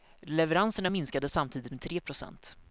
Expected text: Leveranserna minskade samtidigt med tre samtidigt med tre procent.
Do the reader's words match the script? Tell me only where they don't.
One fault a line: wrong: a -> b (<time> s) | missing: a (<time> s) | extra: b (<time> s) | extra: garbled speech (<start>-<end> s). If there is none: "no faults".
missing: samtidigt med tre (2.0 s)